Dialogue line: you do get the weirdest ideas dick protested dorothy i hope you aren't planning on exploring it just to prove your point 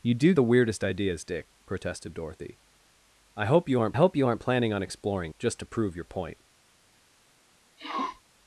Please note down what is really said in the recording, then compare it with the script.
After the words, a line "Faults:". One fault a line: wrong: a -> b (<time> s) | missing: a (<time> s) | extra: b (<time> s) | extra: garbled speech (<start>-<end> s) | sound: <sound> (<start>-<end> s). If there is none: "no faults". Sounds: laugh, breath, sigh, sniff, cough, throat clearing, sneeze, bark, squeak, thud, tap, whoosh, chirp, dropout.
you do the weirdest ideas dick protested dorothy i hope you aren't hope you aren't planning on exploring just to prove your point
Faults:
missing: get (0.3 s)
extra: hope you aren't (3.9 s)
missing: it (5.3 s)
sound: sniff (7.8-8.2 s)